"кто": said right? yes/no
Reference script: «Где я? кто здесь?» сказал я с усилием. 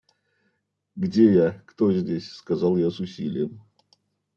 yes